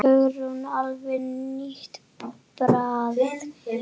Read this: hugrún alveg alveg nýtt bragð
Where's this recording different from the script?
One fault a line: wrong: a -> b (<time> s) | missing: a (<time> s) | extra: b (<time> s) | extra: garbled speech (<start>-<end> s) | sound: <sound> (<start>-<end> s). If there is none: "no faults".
missing: alveg (1.2 s)